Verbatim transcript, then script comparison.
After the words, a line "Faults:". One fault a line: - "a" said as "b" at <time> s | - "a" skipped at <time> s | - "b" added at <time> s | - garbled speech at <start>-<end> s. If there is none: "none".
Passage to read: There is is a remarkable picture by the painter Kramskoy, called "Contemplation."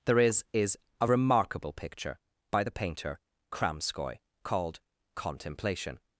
There is is a remarkable picture by the painter Kramskoy, called "Contemplation."
Faults:
none